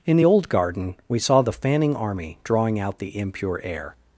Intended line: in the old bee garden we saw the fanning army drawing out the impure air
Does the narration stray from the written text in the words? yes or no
yes